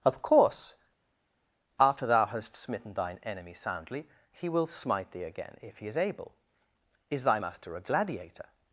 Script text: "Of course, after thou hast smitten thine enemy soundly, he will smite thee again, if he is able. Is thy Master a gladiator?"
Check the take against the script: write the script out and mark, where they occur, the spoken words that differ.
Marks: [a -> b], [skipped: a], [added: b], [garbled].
"Of course, after thou hast smitten thine enemy soundly, he will smite thee again, if he is able. Is thy Master a gladiator?"